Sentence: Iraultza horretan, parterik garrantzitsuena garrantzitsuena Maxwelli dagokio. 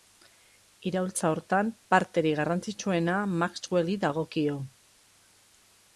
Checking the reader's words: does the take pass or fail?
fail